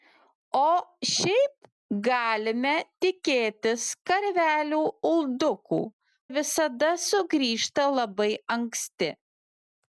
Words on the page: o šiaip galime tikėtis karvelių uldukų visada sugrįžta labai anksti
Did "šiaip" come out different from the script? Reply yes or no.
no